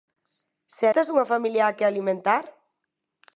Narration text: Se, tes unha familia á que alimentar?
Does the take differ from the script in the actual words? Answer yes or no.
no